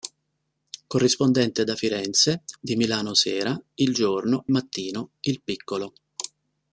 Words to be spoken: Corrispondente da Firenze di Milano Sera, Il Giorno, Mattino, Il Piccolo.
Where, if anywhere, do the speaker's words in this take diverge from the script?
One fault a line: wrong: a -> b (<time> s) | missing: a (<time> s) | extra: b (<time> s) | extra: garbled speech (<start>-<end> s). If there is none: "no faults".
no faults